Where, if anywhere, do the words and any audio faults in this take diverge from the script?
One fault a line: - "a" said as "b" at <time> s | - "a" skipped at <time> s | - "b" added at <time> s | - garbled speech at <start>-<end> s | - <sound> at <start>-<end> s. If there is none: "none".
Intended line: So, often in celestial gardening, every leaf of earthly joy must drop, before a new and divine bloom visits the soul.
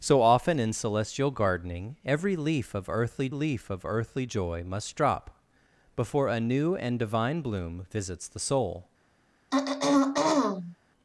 - "leaf of earthly" added at 3.3 s
- throat clearing at 9.5-10.8 s